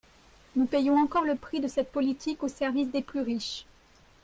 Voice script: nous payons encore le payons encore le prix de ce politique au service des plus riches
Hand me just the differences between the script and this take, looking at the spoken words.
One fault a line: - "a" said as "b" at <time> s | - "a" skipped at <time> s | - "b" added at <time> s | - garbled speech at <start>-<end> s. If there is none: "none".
- "payons encore le" skipped at 1.4 s
- "ce" said as "cette" at 1.7 s